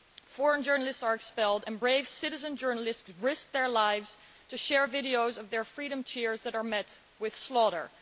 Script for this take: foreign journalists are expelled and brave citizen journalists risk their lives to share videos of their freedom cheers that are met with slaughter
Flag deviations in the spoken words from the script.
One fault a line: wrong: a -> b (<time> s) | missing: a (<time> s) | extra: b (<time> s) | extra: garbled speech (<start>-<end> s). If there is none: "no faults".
no faults